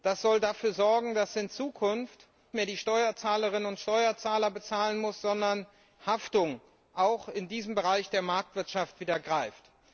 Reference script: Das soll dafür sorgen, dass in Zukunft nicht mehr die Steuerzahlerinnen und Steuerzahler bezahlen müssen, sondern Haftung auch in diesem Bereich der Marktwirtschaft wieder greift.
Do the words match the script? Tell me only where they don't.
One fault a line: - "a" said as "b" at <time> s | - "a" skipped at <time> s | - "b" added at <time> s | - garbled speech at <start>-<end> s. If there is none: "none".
- "nicht" skipped at 2.3 s